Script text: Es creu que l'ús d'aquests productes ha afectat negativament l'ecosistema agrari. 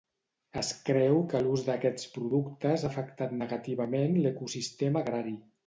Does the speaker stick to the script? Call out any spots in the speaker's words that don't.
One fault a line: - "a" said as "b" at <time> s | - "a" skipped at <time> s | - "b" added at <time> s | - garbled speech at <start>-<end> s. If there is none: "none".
none